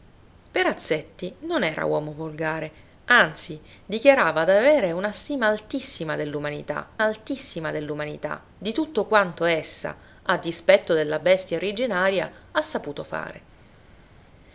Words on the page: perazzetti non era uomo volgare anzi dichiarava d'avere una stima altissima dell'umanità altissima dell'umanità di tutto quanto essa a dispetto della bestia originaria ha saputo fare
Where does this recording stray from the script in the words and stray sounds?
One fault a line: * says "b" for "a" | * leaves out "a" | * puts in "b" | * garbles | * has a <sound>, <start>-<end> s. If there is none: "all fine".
all fine